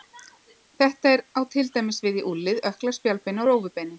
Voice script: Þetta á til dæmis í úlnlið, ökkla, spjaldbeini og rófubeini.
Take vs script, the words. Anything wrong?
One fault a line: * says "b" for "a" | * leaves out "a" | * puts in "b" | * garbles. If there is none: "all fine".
* puts in "við"